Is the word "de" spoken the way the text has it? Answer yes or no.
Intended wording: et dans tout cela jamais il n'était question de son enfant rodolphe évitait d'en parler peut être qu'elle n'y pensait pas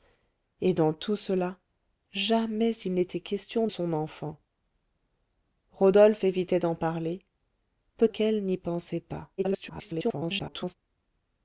no